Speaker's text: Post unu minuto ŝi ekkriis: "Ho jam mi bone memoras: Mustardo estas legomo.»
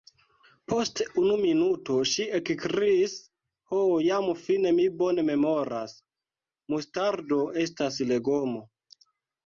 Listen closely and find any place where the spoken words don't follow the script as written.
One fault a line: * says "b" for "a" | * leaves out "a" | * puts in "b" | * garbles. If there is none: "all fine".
* puts in "fine"